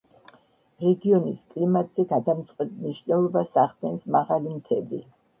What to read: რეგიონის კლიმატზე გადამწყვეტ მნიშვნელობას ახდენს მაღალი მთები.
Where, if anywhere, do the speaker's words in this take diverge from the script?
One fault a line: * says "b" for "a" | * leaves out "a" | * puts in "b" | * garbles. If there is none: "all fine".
all fine